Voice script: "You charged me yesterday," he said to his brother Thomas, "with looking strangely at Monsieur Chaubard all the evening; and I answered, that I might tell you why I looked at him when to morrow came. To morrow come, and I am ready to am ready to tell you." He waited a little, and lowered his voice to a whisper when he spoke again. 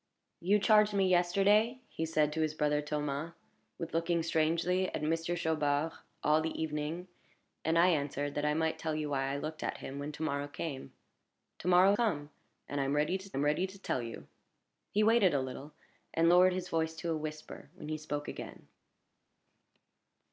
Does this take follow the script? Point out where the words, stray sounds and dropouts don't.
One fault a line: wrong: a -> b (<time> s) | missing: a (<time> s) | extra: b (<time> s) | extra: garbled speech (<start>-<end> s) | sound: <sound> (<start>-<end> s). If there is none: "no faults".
no faults